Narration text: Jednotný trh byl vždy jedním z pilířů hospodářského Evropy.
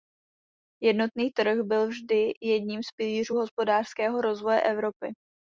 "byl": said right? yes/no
yes